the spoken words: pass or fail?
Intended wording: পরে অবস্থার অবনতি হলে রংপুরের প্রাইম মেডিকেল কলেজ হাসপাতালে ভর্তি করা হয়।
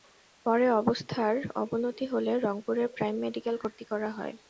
fail